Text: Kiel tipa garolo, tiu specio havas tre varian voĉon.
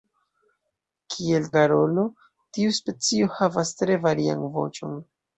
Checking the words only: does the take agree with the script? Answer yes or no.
no